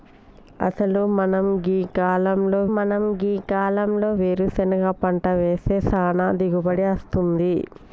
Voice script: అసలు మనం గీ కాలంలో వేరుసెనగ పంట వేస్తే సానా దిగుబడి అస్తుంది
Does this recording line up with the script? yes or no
no